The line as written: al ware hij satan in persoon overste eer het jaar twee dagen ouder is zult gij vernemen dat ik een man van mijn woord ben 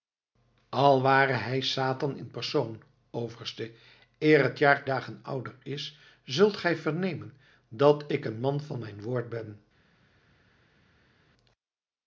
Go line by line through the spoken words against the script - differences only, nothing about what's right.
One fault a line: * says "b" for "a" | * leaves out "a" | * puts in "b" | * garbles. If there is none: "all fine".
* leaves out "twee"